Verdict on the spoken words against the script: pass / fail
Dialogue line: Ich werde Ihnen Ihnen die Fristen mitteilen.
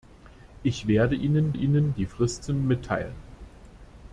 pass